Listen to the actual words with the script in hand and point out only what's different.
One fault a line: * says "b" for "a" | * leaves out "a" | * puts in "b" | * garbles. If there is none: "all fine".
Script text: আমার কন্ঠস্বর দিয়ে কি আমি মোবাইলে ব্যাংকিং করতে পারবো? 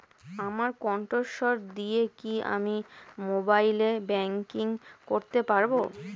all fine